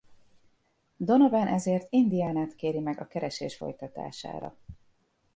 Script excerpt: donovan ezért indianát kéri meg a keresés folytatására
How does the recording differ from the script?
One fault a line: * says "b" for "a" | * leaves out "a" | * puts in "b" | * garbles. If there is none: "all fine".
all fine